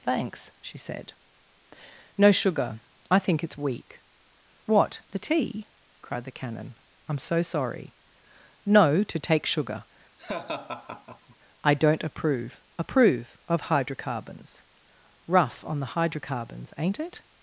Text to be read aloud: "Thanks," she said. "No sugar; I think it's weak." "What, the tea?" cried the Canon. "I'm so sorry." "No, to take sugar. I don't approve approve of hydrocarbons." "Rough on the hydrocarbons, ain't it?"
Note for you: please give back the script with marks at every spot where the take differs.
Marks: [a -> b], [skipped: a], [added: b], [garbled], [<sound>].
"Thanks," she said. "No sugar; I think it's weak." "What, the tea?" cried the Canon. "I'm so sorry." "No, to take sugar. [laugh] I don't approve approve of hydrocarbons." "Rough on the hydrocarbons, ain't it?"